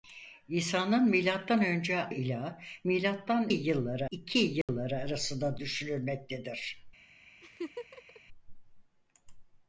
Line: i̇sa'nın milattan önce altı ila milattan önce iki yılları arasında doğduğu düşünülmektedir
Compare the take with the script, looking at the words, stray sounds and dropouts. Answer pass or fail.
fail